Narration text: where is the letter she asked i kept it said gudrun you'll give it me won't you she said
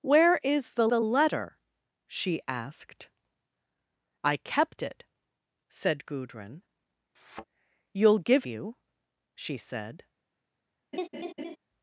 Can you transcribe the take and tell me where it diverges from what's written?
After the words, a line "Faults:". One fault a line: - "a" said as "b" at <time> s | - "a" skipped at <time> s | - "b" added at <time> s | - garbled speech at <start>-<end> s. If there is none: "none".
where is the the letter she asked i kept it said gudrun you'll give you she said
Faults:
- "the" added at 0.8 s
- "it me won't" skipped at 8.5 s